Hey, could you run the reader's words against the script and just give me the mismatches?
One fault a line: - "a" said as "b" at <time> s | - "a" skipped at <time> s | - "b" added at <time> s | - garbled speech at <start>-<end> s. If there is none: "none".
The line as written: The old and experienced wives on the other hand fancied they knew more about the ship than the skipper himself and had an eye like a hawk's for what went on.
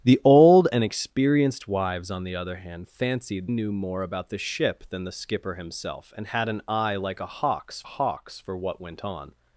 - "they" skipped at 3.5 s
- "hawk's" added at 7.8 s